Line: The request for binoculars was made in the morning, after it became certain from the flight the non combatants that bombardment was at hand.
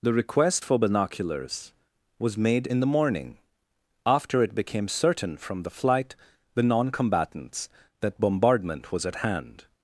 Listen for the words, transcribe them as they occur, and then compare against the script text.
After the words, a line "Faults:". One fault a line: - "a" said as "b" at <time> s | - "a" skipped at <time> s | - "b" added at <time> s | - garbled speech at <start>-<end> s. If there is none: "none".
The request for binoculars was made in the morning, after it became certain from the flight the non combatants that bombardment was at hand.
Faults:
none